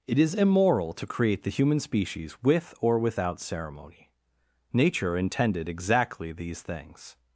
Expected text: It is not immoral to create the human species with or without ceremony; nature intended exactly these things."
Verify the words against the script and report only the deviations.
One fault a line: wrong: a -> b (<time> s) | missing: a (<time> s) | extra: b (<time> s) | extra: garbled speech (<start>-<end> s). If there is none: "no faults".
missing: not (0.3 s)